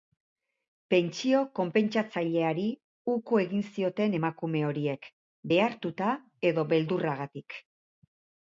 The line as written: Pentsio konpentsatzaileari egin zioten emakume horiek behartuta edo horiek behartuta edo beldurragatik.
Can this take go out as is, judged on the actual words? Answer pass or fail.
fail